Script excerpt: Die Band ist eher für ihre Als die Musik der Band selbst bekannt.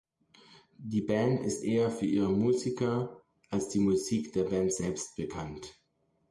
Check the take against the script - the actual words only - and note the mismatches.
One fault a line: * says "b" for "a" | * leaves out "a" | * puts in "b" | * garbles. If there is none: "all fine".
* puts in "Musiker"